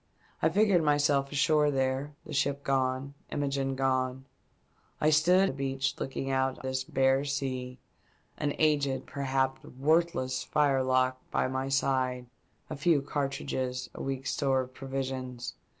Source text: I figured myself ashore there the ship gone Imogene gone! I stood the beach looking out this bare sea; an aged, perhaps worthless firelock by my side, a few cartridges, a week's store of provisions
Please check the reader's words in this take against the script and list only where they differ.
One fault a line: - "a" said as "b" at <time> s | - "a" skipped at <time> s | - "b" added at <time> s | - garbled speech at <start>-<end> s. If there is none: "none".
none